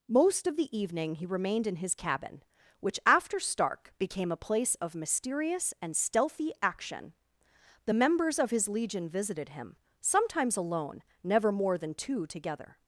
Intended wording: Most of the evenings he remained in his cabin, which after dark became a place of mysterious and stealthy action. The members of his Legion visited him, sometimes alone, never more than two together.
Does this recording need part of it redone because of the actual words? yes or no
yes